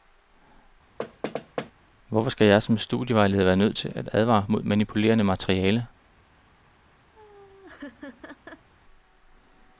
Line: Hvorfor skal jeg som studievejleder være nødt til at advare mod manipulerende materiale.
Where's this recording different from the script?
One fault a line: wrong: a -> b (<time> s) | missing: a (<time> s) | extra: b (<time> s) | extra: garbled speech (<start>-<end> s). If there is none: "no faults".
no faults